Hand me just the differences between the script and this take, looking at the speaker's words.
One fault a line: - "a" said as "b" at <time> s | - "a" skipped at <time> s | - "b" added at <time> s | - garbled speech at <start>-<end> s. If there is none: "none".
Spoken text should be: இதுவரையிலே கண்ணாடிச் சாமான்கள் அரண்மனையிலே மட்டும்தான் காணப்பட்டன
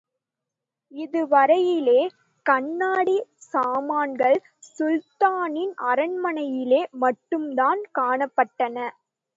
- "சுல்தானின்" added at 4.7 s